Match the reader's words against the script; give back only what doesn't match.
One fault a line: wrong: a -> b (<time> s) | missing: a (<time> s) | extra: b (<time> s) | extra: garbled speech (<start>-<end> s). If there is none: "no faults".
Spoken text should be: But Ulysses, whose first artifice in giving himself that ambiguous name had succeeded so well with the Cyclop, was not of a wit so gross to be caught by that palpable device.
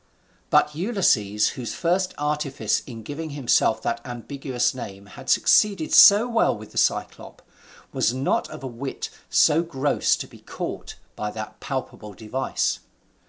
no faults